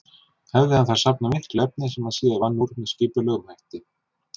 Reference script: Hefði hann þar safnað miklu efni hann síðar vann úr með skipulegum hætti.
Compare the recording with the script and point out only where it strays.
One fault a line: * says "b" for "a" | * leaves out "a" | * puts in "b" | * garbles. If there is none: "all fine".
* puts in "sem"